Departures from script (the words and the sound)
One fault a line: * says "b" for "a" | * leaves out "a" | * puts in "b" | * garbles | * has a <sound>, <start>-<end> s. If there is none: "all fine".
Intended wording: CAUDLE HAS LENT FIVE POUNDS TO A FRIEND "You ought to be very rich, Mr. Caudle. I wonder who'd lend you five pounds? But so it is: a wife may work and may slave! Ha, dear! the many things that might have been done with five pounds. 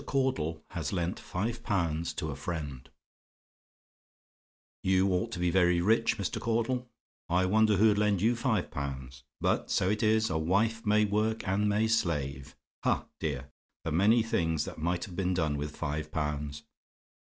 all fine